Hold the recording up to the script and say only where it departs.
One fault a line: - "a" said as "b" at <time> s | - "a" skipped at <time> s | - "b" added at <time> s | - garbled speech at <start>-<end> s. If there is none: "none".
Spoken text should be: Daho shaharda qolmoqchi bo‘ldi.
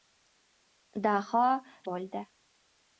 - "shaharda qolmoqchi" skipped at 1.4 s